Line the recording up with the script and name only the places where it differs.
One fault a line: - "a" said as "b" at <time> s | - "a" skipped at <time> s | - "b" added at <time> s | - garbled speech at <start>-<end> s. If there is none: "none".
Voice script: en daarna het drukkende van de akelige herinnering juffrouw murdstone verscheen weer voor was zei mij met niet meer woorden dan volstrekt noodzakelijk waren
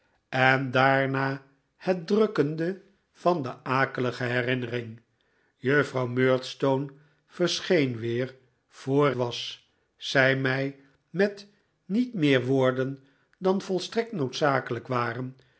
none